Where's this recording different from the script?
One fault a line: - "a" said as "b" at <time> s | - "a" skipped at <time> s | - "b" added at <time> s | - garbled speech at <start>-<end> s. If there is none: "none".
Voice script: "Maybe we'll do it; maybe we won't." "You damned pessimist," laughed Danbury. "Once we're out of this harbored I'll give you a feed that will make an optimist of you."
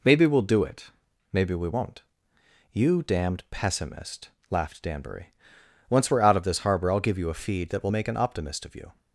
- "harbored" said as "harbor" at 6.6 s